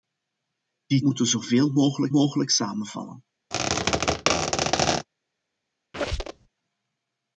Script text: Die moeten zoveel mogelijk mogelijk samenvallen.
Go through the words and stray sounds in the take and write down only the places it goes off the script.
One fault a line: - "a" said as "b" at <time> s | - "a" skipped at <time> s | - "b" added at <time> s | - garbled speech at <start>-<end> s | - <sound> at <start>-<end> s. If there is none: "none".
- squeak at 3.5-5.1 s
- squeak at 5.9-6.5 s